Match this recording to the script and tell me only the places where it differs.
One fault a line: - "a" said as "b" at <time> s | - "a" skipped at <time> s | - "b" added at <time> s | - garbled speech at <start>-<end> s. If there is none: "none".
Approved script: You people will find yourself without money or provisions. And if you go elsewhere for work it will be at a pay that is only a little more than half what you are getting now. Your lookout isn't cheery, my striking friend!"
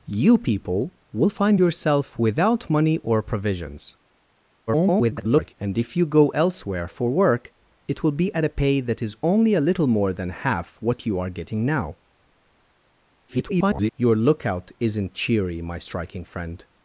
- garbled speech at 4.7-5.5 s
- garbled speech at 13.3-13.9 s